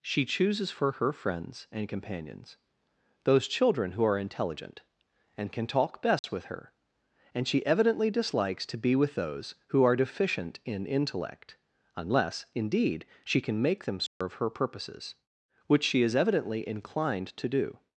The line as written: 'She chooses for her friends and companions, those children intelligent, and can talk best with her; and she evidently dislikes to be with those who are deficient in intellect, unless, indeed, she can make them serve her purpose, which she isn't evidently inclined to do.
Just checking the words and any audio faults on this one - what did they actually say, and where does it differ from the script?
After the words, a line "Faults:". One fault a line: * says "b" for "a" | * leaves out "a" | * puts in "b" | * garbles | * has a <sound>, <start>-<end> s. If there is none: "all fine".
'She chooses for her friends and companions, those children who are intelligent, and can talk best with her; and she evidently dislikes to be with those who are deficient in intellect, unless, indeed, she can make them serve her purposes, which she is evidently inclined to do.
Faults:
* puts in "who are"
* has a dropout, 6.2-6.2 s
* has a dropout, 14.1-14.2 s
* says "purposes" for "purpose"
* says "is" for "isn't"